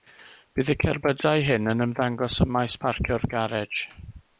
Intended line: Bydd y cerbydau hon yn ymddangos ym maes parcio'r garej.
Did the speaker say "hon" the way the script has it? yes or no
no